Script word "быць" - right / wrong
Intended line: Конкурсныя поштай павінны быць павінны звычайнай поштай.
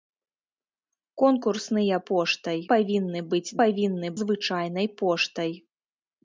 right